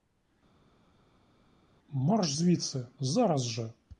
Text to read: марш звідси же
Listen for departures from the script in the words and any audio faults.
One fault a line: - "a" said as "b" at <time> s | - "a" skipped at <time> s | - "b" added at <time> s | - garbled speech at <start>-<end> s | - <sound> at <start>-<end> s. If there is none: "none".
- "зараз" added at 3.0 s